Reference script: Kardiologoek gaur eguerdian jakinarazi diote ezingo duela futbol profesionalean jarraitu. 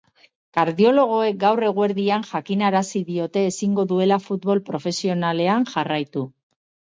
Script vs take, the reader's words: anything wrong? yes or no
no